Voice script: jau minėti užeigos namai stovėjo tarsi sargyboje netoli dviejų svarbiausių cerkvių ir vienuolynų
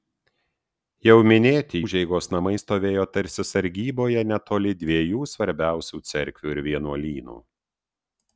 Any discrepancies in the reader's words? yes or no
no